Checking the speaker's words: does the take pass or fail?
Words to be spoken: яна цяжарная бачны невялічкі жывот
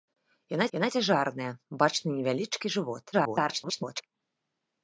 fail